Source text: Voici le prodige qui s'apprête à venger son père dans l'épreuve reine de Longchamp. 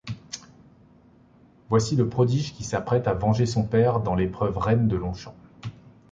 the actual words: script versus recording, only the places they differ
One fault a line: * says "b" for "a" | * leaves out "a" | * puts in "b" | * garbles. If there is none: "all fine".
all fine